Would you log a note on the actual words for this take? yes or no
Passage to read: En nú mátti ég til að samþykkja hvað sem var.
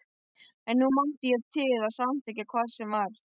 no